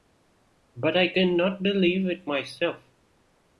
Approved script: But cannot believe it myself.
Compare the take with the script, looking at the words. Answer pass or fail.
fail